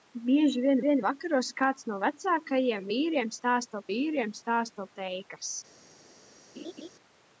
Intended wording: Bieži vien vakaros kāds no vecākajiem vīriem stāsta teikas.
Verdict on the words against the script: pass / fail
fail